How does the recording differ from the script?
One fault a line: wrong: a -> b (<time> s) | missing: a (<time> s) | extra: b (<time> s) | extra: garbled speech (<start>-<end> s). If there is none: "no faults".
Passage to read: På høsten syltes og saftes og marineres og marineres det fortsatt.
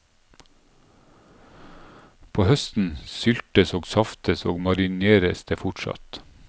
missing: og marineres (5.4 s)